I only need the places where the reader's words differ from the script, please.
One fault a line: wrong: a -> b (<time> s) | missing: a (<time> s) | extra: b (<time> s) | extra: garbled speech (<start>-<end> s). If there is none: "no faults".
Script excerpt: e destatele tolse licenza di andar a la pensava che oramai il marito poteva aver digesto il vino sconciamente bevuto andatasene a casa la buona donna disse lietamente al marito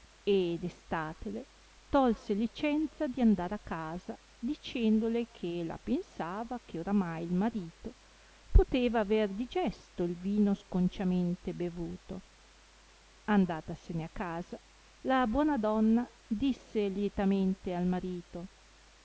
extra: casa dicendole che (3.6 s)